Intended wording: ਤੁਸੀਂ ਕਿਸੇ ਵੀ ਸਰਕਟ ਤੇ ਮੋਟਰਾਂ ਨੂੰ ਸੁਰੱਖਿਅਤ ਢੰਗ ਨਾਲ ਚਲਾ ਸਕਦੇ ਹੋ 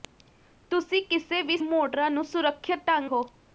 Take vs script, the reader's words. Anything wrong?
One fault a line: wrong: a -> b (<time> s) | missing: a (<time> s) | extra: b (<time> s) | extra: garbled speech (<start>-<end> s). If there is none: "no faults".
missing: ਸਰਕਟ ਤੇ (1.6 s)
missing: ਨਾਲ ਚਲਾ ਸਕਦੇ (3.1 s)